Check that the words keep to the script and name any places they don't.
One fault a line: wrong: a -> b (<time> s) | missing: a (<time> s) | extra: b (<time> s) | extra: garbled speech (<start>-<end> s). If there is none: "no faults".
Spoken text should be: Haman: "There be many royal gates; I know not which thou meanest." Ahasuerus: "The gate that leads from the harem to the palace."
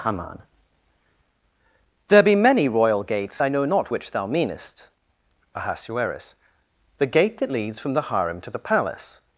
no faults